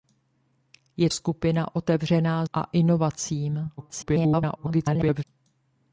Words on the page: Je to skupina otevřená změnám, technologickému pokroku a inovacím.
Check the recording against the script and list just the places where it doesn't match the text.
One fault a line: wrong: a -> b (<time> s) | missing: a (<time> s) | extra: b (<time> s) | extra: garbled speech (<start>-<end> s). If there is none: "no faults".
missing: to (1.1 s)
missing: změnám technologickému pokroku (2.4 s)
extra: garbled speech (3.8-5.2 s)